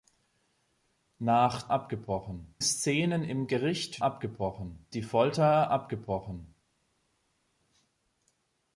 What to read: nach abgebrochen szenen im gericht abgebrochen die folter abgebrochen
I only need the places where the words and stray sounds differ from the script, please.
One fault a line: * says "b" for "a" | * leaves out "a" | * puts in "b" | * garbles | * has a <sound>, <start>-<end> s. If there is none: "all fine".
all fine